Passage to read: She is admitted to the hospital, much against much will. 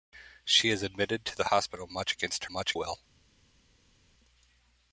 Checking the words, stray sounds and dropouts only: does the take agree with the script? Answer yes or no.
yes